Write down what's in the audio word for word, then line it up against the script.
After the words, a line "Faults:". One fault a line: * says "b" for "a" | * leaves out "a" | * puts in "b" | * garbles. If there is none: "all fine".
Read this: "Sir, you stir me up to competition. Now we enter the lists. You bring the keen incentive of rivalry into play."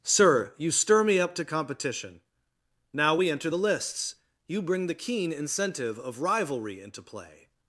"Sir, you stir me up to competition. Now we enter the lists. You bring the keen incentive of rivalry into play."
Faults:
all fine